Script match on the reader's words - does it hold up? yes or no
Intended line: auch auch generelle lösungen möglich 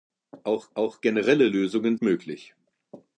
yes